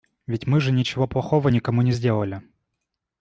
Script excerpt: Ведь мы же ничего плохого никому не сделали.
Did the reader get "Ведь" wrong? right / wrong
right